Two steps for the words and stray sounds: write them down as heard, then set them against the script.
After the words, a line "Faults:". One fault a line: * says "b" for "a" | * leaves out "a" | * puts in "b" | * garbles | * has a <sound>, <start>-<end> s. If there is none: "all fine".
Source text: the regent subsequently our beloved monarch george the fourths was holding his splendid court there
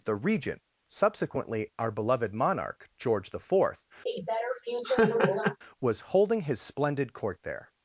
the regent subsequently our beloved monarch george the fourth was holding his splendid court there
Faults:
* says "fourth" for "fourths"
* has a laugh, 4.1-5.6 s